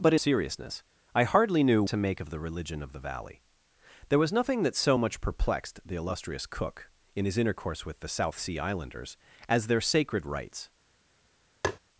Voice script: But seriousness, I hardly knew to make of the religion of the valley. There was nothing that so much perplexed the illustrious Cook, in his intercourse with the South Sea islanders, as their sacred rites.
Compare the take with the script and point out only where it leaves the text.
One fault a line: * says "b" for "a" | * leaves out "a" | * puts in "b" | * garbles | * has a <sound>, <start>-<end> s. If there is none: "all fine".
* has a tap, 11.6-11.8 s